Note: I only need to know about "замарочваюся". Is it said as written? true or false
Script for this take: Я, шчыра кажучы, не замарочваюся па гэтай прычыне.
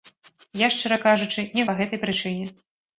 false